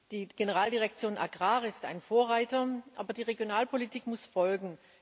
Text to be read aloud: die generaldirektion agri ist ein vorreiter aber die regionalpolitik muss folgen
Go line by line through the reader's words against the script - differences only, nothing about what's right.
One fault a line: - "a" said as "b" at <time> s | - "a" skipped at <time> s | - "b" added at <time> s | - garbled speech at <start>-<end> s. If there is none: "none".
none